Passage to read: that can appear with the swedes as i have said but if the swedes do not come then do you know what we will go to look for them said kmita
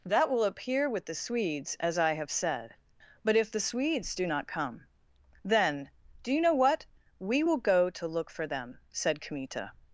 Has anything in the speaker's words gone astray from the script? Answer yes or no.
yes